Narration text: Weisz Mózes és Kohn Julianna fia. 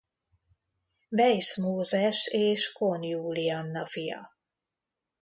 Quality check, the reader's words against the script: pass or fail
pass